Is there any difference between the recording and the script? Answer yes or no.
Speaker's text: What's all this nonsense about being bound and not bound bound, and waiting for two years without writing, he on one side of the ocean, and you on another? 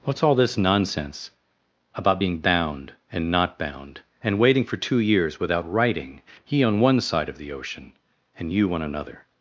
yes